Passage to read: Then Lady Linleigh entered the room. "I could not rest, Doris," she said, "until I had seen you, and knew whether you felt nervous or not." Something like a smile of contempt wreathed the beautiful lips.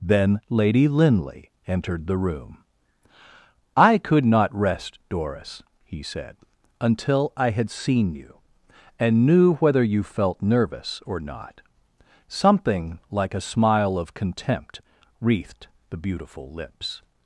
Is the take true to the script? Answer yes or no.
no